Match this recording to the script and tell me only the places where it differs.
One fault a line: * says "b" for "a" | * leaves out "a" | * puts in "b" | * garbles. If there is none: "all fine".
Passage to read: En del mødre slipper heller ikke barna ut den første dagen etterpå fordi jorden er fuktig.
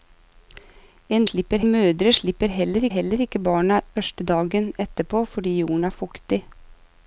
* says "slipper" for "del"
* puts in "heller"
* leaves out "ut den"